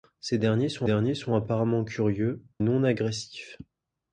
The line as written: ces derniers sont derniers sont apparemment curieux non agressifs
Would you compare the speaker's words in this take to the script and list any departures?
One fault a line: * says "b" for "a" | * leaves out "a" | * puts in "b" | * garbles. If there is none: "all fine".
all fine